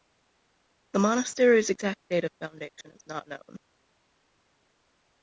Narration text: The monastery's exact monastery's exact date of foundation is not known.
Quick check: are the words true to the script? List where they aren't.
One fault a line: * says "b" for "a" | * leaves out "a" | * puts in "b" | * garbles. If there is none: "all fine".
* leaves out "monastery's exact"